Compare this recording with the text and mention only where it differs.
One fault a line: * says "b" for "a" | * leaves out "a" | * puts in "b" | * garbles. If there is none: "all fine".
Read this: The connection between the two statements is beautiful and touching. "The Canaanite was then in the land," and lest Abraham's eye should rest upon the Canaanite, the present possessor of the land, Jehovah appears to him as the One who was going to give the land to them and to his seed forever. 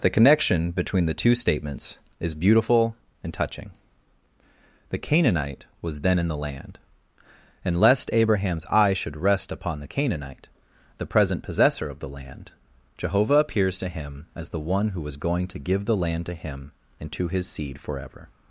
* says "him" for "them"